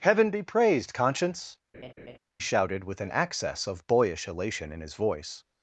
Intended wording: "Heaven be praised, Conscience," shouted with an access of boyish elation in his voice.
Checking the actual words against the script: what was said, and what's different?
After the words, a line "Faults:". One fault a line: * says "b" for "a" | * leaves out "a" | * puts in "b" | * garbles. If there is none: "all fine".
"Heaven be praised, Conscience," shouted with an access of boyish elation in his voice.
Faults:
all fine